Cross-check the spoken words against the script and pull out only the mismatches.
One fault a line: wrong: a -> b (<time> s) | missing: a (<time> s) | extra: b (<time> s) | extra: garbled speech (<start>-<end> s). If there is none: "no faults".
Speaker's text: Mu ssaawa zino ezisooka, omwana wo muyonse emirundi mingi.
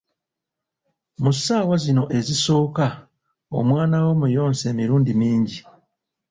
no faults